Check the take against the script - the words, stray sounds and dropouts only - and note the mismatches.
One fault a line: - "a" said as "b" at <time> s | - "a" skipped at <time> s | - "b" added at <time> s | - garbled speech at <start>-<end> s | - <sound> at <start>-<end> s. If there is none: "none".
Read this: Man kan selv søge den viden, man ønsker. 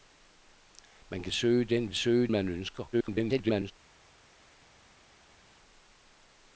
- "selv" skipped at 1.3 s
- "viden" said as "søge" at 1.9 s
- garbled speech at 2.9-3.7 s